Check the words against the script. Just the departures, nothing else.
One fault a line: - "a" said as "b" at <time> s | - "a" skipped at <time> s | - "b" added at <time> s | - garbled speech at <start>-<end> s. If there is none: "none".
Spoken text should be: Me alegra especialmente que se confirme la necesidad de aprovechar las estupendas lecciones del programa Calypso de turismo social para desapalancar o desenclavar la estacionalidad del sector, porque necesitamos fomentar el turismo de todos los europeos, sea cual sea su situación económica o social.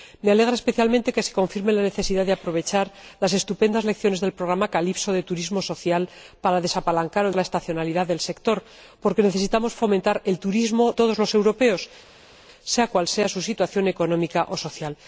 - "desenclavar" skipped at 7.3 s
- "de" skipped at 10.9 s